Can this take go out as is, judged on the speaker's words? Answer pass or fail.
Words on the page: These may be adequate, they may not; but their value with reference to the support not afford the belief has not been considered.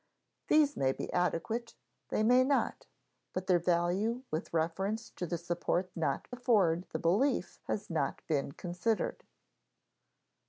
pass